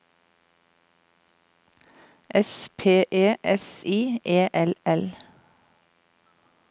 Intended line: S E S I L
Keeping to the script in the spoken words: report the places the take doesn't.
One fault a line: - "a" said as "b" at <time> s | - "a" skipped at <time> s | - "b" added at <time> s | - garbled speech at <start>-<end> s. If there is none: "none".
- "P" added at 2.8 s
- "E L" added at 4.2 s